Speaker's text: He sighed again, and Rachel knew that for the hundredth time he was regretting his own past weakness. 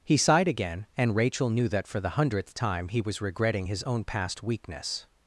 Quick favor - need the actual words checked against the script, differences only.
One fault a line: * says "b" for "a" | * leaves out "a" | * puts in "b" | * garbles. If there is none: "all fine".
all fine